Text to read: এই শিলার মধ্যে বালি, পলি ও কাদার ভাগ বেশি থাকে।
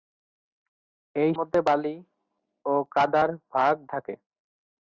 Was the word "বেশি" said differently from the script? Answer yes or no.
yes